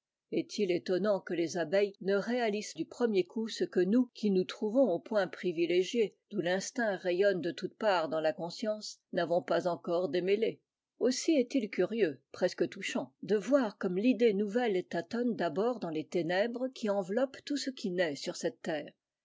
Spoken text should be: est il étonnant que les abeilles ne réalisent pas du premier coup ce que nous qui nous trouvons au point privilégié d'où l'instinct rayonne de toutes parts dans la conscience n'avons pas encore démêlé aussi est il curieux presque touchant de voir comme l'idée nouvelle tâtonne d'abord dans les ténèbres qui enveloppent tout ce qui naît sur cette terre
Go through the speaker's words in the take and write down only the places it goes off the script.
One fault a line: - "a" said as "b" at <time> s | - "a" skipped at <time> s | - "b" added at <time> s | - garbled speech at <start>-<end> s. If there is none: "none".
- "pas" skipped at 2.7 s